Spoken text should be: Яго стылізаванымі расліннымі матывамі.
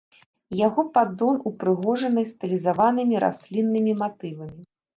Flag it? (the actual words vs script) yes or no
yes